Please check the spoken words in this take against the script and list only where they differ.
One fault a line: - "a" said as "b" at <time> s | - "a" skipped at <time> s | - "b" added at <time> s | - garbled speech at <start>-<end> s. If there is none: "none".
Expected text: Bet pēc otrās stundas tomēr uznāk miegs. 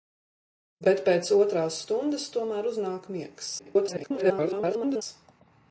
- garbled speech at 3.6-5.0 s